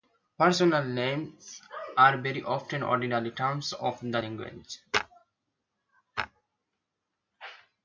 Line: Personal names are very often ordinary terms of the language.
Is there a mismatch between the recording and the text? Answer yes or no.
no